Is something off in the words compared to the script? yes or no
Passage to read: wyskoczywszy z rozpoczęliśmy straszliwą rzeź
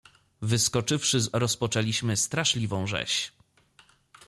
no